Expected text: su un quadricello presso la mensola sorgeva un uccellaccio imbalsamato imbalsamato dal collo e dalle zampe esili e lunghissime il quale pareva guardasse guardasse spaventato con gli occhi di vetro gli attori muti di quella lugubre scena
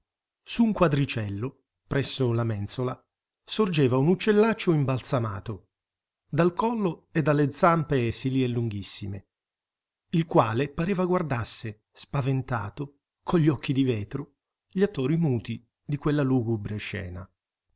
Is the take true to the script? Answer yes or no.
no